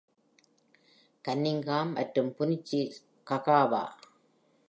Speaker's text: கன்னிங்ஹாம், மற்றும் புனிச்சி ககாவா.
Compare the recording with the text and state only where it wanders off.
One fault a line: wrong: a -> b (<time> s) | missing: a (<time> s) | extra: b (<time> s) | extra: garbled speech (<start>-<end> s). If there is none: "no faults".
no faults